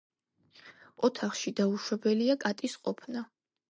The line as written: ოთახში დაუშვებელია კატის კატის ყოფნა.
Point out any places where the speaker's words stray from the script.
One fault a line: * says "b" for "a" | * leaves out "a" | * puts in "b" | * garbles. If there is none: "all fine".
* leaves out "კატის"